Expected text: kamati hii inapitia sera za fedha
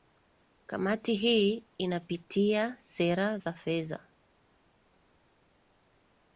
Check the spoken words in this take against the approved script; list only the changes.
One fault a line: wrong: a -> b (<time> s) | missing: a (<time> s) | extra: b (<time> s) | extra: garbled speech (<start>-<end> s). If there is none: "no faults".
no faults